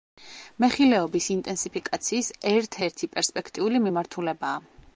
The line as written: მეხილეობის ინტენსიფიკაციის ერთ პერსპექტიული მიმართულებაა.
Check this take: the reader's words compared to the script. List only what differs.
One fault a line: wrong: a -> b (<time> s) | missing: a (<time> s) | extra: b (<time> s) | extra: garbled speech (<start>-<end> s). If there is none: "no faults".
extra: ერთი (2.9 s)